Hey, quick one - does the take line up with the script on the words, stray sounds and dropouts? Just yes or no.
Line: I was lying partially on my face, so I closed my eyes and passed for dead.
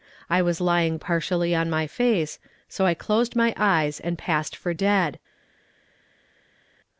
yes